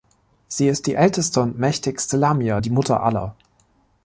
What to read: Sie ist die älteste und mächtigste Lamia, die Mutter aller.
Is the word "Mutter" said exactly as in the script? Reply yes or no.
yes